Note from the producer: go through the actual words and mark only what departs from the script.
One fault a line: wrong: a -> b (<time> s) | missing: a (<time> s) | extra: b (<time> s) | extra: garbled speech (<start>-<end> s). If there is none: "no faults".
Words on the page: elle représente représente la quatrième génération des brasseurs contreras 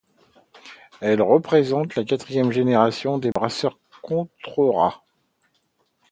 missing: représente (1.9 s)